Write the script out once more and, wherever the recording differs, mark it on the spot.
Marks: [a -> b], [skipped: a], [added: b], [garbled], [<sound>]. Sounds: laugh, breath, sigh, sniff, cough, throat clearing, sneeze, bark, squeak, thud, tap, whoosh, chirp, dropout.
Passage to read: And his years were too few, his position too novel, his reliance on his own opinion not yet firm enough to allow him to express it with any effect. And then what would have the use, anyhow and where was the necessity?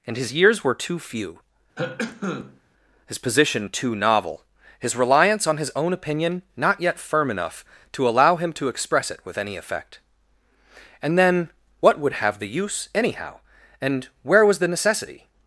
And his years were too few, [cough] his position too novel, his reliance on his own opinion not yet firm enough to allow him to express it with any effect. And then what would have the use, anyhow and where was the necessity?